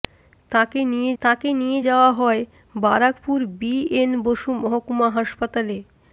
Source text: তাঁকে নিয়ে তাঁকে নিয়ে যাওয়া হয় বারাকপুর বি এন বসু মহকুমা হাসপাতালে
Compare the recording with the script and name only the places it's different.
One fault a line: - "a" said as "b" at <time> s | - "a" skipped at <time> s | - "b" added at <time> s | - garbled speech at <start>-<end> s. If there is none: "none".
none